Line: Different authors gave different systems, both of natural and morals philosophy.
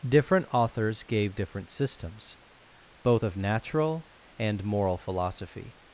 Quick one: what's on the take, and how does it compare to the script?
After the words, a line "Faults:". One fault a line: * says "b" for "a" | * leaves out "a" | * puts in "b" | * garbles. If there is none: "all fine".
Different authors gave different systems, both of natural and moral philosophy.
Faults:
* says "moral" for "morals"